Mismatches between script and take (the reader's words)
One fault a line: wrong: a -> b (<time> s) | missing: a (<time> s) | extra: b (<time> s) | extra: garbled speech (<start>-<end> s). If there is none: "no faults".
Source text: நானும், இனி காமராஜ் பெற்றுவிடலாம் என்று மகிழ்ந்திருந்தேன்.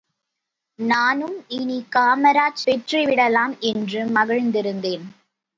no faults